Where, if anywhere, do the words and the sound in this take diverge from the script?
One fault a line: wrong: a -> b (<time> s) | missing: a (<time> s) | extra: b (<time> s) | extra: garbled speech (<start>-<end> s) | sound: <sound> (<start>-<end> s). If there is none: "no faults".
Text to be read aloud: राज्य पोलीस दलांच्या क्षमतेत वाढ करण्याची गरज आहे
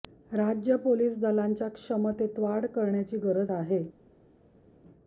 no faults